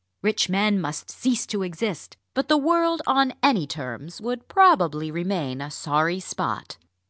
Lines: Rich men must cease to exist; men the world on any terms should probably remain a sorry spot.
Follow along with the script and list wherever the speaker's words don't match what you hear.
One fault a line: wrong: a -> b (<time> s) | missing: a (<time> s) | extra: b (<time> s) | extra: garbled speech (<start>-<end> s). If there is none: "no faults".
wrong: men -> but (2.3 s)
wrong: should -> would (4.2 s)